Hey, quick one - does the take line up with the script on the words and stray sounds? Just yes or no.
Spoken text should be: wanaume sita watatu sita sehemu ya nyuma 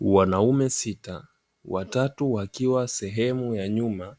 no